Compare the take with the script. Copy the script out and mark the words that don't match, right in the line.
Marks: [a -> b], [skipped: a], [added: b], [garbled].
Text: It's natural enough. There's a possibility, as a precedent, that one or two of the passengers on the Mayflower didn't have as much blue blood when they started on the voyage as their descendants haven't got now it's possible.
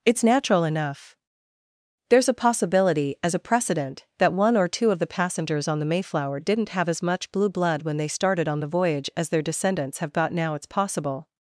It's natural enough. There's a possibility, as a precedent, that one or two of the passengers on the Mayflower didn't have as much blue blood when they started on the voyage as their descendants [haven't -> have] got now it's possible.